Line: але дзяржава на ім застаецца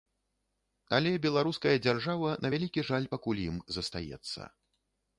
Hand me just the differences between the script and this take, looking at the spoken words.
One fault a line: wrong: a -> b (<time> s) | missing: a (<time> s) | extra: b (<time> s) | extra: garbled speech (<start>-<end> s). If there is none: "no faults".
extra: беларуская (1.2 s)
extra: вялікі жаль пакуль (2.5 s)